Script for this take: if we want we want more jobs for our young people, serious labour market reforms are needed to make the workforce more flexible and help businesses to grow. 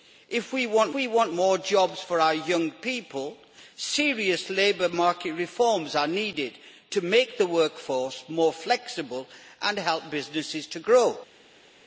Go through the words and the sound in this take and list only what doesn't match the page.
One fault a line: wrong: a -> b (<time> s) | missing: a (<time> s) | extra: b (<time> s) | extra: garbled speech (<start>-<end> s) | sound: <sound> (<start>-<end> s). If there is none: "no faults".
no faults